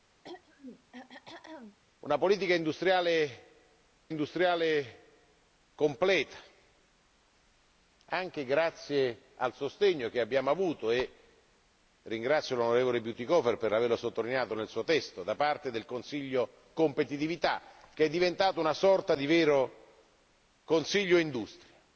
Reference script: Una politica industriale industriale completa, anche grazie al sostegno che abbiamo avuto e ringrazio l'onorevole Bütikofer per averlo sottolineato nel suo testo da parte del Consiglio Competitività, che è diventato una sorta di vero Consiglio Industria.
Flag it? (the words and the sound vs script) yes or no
yes